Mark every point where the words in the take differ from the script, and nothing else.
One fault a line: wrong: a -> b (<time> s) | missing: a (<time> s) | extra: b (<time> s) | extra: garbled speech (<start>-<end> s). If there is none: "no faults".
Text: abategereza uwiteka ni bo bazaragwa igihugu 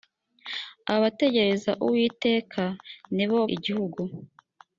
missing: bazaragwa (3.4 s)